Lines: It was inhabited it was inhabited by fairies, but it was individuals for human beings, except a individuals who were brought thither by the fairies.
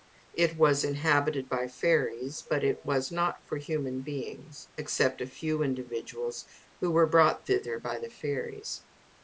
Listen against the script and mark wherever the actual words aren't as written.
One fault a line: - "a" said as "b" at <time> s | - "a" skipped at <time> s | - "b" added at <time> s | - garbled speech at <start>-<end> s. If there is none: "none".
- "it was inhabited" skipped at 1.5 s
- "individuals" said as "not" at 3.1 s
- "few" added at 5.3 s